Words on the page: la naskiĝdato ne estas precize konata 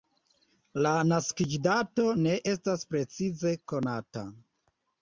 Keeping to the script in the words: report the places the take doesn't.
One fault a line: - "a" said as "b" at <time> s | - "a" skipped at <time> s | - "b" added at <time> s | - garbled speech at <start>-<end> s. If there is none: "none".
none